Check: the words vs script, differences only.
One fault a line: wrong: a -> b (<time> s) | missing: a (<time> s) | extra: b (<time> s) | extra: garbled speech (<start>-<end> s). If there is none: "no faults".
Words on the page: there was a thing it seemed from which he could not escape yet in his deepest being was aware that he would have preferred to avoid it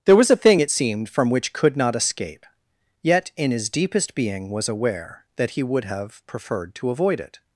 missing: he (1.5 s)